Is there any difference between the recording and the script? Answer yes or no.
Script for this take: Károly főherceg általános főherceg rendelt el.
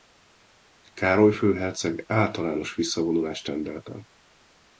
yes